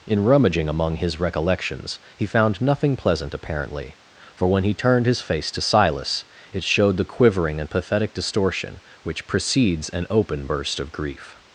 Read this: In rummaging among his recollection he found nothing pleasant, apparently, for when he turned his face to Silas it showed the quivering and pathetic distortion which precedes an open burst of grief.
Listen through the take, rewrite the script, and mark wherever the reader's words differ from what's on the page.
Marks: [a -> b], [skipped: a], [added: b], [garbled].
In rummaging among his [recollection -> recollections] he found nothing pleasant, apparently, for when he turned his face to Silas it showed the quivering and pathetic distortion which precedes an open burst of grief.